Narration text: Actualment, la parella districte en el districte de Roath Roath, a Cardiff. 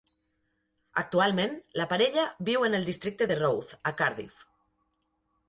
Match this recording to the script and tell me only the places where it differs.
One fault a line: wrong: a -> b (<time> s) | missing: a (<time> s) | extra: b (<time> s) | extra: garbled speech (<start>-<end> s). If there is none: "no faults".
wrong: districte -> viu (2.5 s)
missing: Roath (3.8 s)